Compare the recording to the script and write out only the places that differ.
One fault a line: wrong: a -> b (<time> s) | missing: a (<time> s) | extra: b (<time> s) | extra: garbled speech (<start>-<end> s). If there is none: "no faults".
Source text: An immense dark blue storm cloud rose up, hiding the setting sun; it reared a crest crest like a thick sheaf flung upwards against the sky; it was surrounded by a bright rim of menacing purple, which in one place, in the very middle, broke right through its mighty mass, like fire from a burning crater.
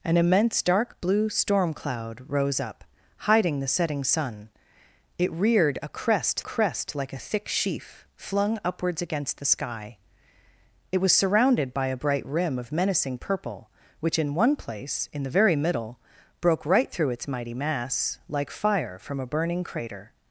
no faults